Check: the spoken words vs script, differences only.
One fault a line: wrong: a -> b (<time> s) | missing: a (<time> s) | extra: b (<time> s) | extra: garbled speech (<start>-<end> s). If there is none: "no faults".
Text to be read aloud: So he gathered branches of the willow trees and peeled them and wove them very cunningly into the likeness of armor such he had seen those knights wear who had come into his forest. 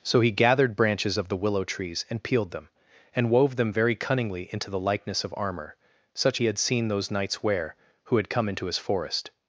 no faults